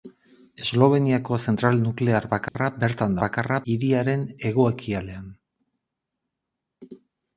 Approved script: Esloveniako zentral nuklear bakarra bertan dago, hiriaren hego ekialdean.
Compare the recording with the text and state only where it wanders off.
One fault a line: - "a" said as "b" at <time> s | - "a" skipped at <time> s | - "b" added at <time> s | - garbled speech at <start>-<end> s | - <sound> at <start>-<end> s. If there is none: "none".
- dropout at 2.5-2.6 s
- "dago" said as "bakarra" at 3.2 s